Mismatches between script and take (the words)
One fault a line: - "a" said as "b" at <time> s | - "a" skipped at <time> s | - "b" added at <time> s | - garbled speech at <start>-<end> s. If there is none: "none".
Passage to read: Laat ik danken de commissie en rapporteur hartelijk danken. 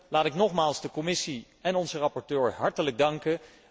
- "danken" said as "nogmaals" at 0.3 s
- "onze" added at 1.8 s